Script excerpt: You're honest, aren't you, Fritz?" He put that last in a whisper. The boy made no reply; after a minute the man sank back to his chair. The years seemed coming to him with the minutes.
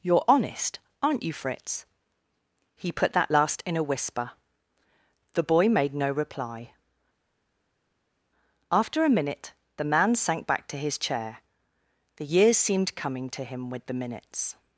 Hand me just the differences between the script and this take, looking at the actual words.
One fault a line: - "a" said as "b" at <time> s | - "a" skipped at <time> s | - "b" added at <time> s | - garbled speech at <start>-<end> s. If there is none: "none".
none